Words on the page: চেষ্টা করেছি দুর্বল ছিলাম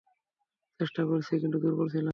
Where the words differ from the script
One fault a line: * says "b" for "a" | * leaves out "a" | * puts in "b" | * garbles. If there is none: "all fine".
* puts in "কিন্তু"